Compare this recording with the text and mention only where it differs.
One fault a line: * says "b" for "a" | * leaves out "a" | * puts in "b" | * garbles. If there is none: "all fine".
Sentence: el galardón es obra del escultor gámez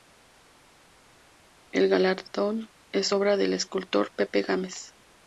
* puts in "pepe"